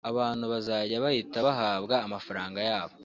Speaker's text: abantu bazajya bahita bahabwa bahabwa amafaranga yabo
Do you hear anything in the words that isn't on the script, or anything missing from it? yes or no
yes